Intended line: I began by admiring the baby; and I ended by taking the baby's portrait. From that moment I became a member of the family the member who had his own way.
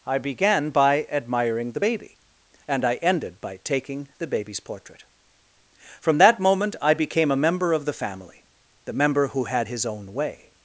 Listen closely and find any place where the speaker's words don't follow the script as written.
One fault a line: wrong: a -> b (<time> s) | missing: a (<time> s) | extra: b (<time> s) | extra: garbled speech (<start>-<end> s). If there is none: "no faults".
no faults